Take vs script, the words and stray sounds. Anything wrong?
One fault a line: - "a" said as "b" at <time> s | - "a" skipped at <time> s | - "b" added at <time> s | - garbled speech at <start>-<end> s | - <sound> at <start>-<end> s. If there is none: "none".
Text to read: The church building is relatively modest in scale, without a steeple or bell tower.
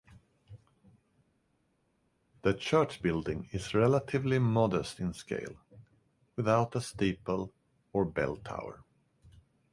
none